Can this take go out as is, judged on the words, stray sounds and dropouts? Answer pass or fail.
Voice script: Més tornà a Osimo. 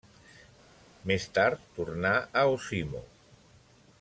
fail